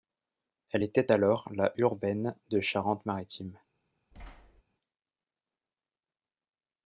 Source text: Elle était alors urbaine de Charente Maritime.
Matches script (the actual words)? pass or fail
fail